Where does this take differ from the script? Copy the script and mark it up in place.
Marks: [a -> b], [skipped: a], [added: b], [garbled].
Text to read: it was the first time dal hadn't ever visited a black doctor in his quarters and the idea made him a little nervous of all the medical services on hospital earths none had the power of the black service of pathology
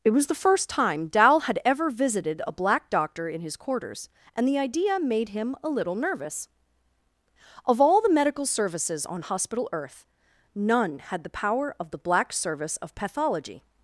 it was the first time dal [hadn't -> had] ever visited a black doctor in his quarters and the idea made him a little nervous of all the medical services on hospital [earths -> earth] none had the power of the black service of pathology